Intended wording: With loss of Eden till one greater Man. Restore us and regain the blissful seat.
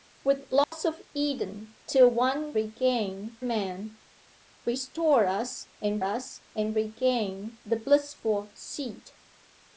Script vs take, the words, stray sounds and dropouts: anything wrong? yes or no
yes